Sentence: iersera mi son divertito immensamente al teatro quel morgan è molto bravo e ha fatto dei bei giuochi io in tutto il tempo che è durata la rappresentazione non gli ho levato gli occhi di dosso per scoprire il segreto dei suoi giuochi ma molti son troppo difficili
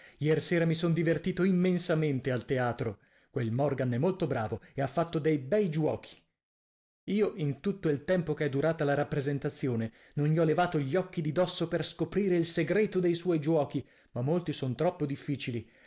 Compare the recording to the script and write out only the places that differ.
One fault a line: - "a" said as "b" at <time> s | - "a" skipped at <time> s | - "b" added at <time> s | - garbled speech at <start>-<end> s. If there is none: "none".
none